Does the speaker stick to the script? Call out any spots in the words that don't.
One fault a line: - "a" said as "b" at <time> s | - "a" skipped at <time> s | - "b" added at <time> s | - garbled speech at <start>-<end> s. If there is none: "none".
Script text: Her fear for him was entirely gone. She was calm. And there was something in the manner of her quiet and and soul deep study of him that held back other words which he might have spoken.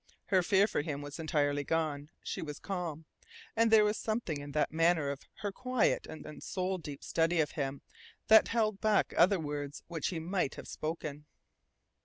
none